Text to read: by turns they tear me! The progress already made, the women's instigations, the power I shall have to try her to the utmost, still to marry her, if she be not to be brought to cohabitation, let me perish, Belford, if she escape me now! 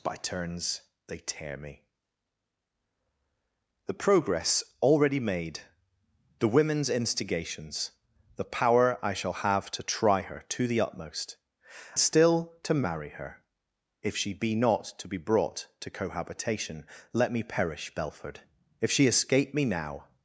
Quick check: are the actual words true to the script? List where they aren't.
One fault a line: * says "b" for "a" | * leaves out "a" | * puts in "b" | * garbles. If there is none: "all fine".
all fine